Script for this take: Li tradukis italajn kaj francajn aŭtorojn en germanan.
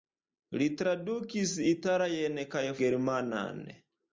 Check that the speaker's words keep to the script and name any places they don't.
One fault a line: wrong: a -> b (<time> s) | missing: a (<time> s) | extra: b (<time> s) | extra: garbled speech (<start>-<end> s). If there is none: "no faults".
missing: francajn aŭtorojn en (2.6 s)